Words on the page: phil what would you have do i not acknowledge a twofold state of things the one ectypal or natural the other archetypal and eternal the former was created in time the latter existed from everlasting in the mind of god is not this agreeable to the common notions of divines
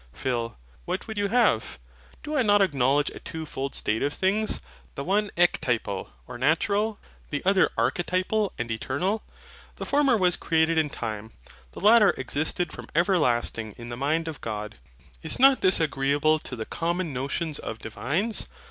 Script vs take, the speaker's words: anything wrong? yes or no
no